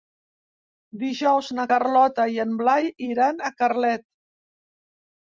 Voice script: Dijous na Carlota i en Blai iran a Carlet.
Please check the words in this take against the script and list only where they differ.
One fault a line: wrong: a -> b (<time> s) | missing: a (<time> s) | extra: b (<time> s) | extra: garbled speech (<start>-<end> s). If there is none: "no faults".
no faults